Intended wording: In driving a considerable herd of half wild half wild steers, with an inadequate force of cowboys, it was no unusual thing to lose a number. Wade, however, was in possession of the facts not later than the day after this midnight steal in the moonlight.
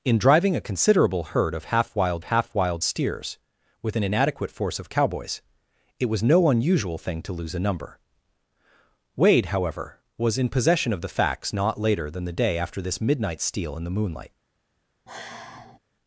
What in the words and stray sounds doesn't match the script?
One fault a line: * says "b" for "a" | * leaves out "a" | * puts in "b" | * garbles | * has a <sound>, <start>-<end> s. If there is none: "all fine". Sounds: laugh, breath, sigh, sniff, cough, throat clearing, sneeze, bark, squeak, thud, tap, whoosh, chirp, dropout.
* has a sigh, 15.1-15.8 s